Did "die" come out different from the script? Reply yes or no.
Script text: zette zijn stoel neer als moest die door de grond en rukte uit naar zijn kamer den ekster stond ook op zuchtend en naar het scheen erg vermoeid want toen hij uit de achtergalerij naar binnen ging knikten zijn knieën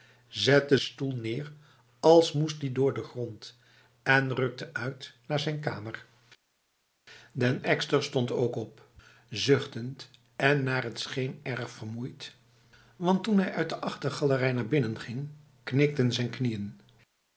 no